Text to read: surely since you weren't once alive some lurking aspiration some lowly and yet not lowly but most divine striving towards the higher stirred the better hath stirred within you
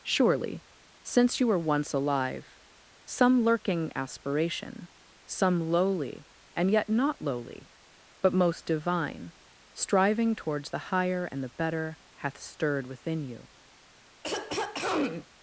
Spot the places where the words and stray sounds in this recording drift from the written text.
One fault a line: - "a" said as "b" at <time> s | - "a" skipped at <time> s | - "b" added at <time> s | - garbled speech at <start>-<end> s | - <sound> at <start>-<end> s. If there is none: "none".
- "weren't" said as "were" at 1.5 s
- "stirred" said as "and" at 11.3 s
- throat clearing at 14.2-15.3 s